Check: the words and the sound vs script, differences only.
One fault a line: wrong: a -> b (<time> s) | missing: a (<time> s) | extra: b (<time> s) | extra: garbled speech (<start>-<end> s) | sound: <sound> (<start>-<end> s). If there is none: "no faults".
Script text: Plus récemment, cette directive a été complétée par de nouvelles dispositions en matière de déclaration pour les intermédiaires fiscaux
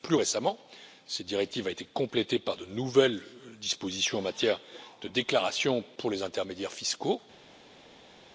no faults